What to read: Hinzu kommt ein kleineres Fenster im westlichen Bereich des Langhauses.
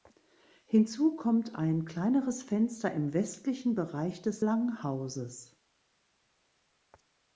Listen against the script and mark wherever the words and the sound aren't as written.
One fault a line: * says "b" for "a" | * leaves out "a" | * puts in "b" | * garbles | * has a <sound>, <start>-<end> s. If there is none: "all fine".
all fine